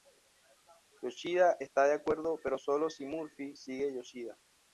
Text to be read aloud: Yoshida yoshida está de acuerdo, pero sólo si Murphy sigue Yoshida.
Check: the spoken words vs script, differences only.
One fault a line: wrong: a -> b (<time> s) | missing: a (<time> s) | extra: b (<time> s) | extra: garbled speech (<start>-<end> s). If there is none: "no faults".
missing: yoshida (1.6 s)